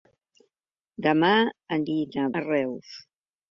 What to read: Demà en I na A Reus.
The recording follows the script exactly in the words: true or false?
true